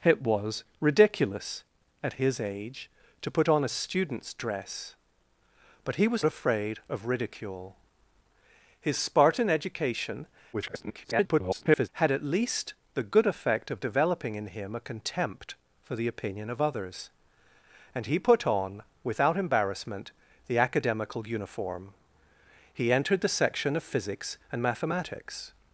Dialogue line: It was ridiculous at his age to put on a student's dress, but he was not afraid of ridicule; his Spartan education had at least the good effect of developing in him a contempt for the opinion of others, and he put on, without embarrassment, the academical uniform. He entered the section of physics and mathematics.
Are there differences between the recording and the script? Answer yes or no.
yes